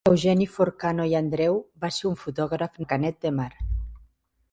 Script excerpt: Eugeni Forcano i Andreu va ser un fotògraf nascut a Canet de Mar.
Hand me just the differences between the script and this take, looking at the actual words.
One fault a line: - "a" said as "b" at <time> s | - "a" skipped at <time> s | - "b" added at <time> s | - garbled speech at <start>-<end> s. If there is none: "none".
- "nascut" skipped at 2.8 s